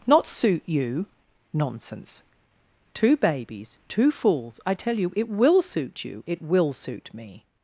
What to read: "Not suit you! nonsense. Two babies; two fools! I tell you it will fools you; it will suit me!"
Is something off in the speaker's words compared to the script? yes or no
yes